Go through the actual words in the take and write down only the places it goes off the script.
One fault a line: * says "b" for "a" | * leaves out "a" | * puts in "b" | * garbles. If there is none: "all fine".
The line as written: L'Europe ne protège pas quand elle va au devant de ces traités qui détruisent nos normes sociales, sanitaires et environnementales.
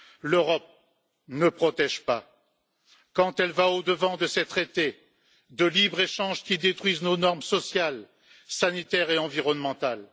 * puts in "de libre échange"